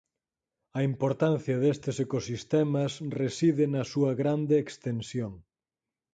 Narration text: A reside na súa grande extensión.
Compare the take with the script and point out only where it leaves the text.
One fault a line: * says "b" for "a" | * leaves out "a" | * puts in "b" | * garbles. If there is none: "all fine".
* puts in "importancia destes ecosistemas"